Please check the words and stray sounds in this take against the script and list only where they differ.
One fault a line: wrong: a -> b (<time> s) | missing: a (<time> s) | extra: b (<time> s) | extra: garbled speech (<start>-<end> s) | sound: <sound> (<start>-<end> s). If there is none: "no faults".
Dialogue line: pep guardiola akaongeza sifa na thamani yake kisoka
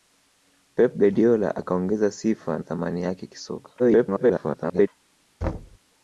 missing: na (2.6 s)
extra: garbled speech (3.8-4.9 s)
sound: thud (5.4-5.8 s)